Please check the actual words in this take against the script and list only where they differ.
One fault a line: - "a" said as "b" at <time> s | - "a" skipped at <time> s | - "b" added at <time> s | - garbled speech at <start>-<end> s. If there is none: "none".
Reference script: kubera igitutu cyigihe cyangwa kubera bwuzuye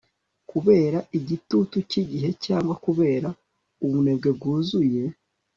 - "ubunebwe" added at 3.8 s